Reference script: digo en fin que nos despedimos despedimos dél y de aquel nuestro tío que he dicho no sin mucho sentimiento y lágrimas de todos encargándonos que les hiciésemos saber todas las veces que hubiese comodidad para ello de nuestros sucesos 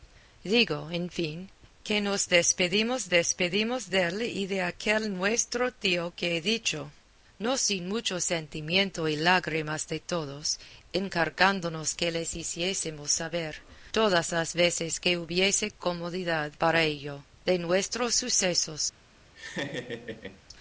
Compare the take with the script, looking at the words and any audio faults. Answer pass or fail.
fail